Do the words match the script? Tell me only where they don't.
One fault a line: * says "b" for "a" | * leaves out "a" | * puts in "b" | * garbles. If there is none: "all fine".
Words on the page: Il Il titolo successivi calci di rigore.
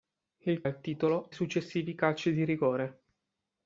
all fine